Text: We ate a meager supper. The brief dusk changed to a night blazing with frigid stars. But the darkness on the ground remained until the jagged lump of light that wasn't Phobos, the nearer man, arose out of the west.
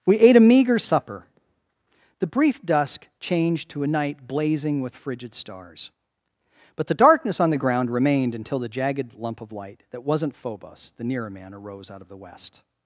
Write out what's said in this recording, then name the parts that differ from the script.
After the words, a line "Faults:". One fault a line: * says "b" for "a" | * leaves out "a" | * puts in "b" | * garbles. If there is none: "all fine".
We ate a meager supper. The brief dusk changed to a night blazing with frigid stars. But the darkness on the ground remained until the jagged lump of light that wasn't Phobos, the nearer man, arose out of the west.
Faults:
all fine